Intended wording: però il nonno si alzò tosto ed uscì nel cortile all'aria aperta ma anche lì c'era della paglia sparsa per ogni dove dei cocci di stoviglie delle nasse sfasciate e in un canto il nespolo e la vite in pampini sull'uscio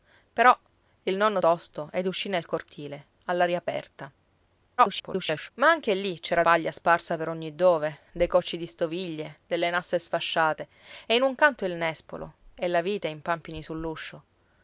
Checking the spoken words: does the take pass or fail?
fail